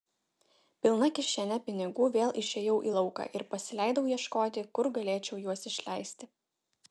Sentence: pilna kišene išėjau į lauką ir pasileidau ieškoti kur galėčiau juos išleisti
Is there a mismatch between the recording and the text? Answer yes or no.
yes